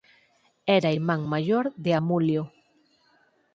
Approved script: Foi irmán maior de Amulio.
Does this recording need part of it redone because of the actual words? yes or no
yes